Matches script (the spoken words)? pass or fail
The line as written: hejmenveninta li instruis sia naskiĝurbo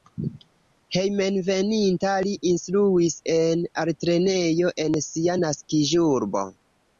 fail